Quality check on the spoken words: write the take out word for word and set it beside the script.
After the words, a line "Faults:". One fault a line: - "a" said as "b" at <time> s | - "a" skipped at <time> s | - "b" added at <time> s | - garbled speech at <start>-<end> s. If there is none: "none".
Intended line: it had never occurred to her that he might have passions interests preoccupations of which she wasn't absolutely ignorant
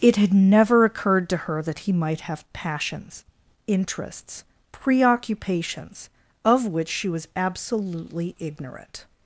it had never occurred to her that he might have passions interests preoccupations of which she was absolutely ignorant
Faults:
- "wasn't" said as "was" at 7.1 s